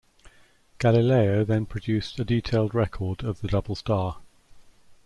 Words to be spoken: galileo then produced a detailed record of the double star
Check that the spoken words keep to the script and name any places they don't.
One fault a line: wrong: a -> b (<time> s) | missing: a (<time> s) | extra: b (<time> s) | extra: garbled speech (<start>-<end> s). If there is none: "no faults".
no faults